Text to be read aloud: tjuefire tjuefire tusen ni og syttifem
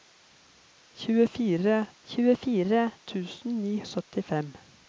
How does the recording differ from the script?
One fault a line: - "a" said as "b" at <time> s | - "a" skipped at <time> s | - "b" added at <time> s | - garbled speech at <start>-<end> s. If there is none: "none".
none